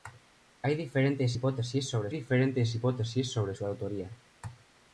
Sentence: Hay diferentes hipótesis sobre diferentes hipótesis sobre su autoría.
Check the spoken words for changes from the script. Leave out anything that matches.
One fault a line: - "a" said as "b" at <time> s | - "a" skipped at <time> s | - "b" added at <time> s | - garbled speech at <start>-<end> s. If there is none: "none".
none